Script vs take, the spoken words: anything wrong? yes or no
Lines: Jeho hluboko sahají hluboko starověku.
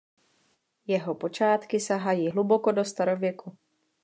yes